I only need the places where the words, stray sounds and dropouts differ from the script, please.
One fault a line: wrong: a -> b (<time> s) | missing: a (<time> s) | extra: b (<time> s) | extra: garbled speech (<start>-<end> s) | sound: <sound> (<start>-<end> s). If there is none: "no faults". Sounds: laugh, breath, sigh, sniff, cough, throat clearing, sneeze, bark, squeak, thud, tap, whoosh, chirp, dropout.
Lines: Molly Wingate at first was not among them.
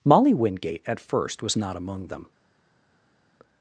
no faults